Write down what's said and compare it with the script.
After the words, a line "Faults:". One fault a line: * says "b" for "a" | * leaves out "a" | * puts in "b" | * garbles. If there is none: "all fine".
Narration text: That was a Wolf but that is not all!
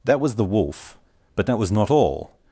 That was the Wolf but that was not all!
Faults:
* says "the" for "a"
* says "was" for "is"